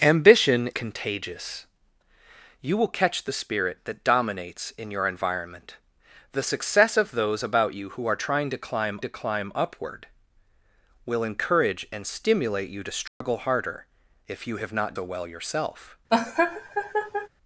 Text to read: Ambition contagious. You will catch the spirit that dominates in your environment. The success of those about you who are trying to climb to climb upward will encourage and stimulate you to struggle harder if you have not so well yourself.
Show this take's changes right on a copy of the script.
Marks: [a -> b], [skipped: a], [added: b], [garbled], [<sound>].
Ambition contagious. You will catch the spirit that dominates in your environment. The success of those about you who are trying to climb to climb upward will encourage and stimulate you to struggle [dropout] harder if you have not so well yourself. [laugh]